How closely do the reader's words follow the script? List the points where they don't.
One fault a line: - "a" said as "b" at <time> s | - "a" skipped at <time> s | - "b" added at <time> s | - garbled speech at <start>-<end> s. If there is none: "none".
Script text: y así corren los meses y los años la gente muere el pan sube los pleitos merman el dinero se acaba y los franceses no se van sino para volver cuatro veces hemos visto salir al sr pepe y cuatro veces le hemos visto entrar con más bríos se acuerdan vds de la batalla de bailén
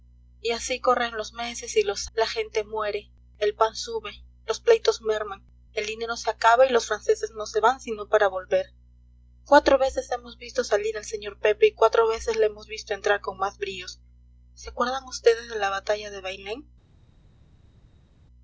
- "años" skipped at 2.1 s